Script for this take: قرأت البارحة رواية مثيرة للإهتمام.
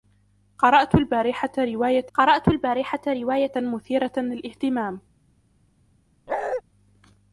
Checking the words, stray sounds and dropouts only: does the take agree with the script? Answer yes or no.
no